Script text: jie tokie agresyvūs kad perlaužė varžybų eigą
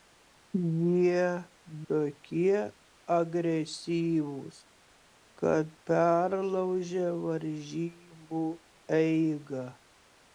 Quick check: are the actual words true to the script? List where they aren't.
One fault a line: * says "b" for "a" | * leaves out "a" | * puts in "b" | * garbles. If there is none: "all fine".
all fine